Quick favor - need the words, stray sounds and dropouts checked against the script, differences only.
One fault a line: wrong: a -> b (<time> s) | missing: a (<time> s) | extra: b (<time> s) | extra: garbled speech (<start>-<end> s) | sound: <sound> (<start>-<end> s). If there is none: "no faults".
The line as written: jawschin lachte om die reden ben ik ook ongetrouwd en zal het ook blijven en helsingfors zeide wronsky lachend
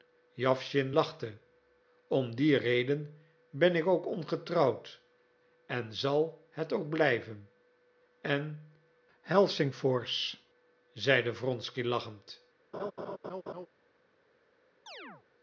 sound: laugh (12.7-13.7 s)
sound: chirp (14.9-15.2 s)